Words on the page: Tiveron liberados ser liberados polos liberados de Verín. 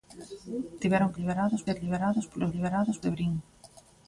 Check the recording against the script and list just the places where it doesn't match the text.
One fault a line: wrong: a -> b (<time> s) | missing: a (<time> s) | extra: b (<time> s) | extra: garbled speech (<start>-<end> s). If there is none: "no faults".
no faults